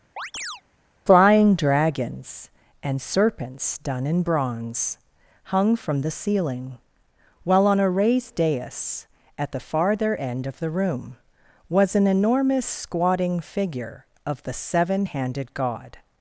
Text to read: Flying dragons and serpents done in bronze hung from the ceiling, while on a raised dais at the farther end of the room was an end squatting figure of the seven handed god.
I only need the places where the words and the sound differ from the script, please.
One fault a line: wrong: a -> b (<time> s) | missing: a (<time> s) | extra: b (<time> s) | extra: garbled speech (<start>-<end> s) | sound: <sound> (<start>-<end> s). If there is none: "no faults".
sound: chirp (0.2-0.6 s)
wrong: end -> enormous (12.1 s)